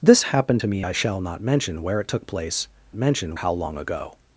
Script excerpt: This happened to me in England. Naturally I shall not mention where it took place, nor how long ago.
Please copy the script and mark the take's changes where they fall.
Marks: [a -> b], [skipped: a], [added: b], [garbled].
This happened to me [skipped: in England. Naturally] I shall not mention where it took place, [nor -> mention] how long ago.